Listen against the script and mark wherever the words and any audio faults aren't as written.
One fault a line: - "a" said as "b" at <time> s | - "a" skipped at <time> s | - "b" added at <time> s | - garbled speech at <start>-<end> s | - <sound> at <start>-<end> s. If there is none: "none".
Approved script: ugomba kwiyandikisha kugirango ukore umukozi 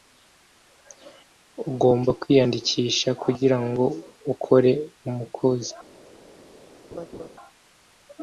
- laugh at 6.9-7.3 s